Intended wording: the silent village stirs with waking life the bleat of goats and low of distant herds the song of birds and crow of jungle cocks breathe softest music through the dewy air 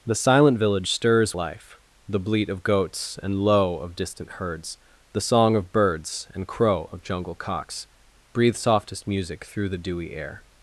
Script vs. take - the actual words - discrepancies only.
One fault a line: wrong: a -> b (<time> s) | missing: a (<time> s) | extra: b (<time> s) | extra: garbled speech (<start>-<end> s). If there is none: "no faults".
missing: with waking (1.4 s)